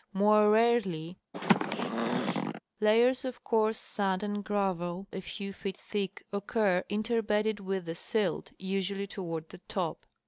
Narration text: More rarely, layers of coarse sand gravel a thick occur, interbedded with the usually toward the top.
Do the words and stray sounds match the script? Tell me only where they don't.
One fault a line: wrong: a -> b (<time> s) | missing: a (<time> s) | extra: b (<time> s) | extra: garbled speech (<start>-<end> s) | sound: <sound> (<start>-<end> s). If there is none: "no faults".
sound: throat clearing (1.3-2.6 s)
extra: and (4.2 s)
extra: few feet (5.2 s)
extra: silt (8.0 s)